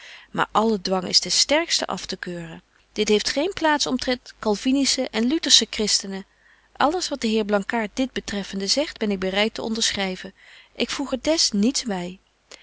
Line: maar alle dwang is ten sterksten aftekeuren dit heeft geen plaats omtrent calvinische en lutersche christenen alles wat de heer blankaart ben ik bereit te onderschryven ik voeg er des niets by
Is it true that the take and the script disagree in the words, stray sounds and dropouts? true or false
true